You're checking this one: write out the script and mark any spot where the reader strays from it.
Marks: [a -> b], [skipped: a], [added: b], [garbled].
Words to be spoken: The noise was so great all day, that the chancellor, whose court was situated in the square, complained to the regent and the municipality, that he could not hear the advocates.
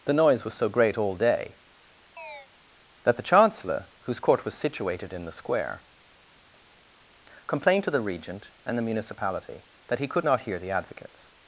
The noise was so great all day, that the chancellor, whose court was situated in the square, complained to the regent and the municipality, that he could not hear the advocates.